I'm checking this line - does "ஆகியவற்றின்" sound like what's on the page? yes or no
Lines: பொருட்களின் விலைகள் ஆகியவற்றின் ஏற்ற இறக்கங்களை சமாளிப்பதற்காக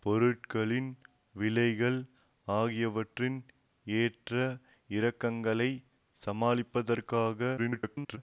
yes